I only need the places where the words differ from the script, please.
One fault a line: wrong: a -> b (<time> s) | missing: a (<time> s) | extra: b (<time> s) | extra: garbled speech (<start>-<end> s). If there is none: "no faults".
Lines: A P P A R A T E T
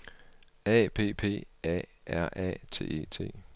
no faults